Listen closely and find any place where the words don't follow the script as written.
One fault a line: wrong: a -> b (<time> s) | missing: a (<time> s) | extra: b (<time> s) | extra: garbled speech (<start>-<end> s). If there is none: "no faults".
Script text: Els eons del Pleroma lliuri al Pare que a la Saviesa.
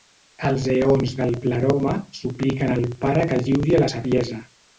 wrong: lliuri -> supliquen (2.2 s)
extra: lliuri (3.4 s)